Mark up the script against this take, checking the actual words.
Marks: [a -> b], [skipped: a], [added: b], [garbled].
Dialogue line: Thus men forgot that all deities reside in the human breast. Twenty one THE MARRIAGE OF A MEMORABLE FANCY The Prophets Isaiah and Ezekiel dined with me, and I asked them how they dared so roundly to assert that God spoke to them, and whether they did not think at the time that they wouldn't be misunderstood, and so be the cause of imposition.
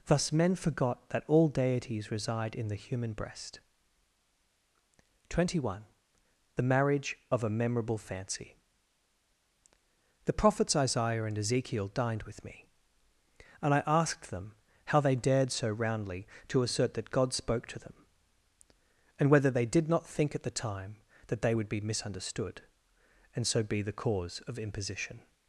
Thus men forgot that all deities reside in the human breast. Twenty one THE MARRIAGE OF A MEMORABLE FANCY The Prophets Isaiah and Ezekiel dined with me, and I asked them how they dared so roundly to assert that God spoke to them, and whether they did not think at the time that they [wouldn't -> would] be misunderstood, and so be the cause of imposition.